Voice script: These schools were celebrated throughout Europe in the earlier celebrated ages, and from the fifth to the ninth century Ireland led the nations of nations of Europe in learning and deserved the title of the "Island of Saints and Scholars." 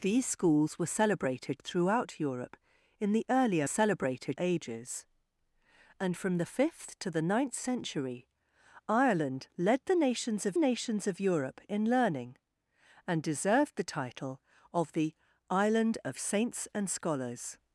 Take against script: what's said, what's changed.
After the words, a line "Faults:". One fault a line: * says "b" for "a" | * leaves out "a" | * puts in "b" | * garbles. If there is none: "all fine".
These schools were celebrated throughout Europe in the earlier celebrated ages, and from the fifth to the ninth century Ireland led the nations of nations of Europe in learning and deserved the title of the "Island of Saints and Scholars."
Faults:
all fine